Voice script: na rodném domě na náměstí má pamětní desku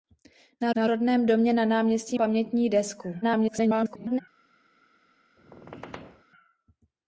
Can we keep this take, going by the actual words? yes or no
no